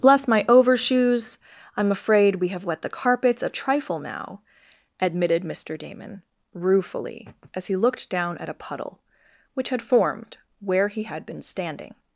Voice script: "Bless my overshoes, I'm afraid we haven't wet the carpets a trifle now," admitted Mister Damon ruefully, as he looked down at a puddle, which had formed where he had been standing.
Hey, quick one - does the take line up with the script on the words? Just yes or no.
no